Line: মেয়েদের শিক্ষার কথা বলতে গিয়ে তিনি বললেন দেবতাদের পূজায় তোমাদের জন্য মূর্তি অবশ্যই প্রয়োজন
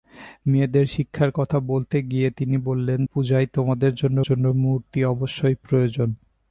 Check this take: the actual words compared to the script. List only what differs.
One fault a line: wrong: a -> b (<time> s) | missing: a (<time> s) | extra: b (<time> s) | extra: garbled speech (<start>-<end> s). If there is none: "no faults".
missing: দেবতাদের (3.0 s)
extra: জন্য (4.2 s)